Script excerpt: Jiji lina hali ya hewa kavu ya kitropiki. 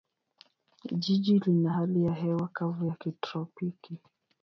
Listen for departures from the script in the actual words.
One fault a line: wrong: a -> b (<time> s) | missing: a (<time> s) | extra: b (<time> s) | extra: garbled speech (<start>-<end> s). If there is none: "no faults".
no faults